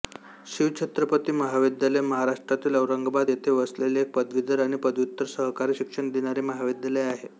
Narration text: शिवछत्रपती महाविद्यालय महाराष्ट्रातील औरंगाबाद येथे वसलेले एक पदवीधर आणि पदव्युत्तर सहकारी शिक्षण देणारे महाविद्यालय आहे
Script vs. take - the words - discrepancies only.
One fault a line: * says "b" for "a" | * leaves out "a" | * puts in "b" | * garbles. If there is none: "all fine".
all fine